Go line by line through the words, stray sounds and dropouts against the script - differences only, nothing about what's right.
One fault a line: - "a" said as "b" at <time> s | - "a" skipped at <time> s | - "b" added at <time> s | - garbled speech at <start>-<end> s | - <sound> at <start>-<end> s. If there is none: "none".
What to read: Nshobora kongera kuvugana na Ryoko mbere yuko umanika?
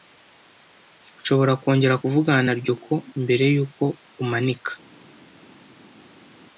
none